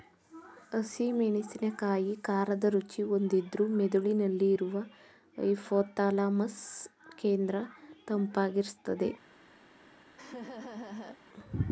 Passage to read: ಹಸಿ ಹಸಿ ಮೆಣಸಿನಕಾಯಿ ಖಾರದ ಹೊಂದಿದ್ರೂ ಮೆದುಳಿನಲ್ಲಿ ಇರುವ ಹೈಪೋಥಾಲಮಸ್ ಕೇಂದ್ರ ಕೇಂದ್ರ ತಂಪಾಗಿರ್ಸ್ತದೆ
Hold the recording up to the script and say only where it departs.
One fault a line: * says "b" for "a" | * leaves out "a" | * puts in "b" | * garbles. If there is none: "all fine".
* leaves out "ಹಸಿ"
* puts in "ರುಚಿ"
* leaves out "ಕೇಂದ್ರ"